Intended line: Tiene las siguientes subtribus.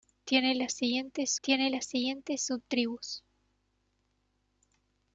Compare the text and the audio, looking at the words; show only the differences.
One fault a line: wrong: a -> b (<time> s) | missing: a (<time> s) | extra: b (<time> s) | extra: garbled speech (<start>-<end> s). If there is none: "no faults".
extra: tiene las siguientes (1.4 s)